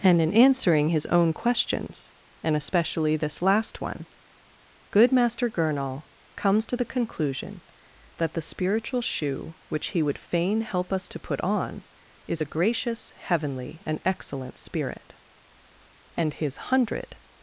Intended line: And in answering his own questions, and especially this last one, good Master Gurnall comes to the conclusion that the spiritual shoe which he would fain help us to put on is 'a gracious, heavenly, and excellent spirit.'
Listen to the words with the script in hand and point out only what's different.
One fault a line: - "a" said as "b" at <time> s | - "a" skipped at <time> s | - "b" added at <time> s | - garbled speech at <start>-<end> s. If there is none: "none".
- "And his hundred" added at 16.1 s